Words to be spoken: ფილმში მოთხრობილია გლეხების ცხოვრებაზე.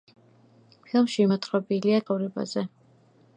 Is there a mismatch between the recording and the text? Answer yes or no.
yes